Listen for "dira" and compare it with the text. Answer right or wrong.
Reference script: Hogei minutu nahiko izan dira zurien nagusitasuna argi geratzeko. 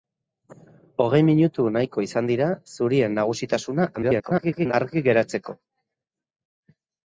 right